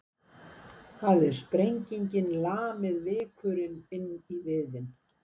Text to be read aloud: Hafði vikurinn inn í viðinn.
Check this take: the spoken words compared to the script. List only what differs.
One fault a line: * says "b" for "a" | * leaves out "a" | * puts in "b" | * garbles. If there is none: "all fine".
* puts in "sprengingin lamið"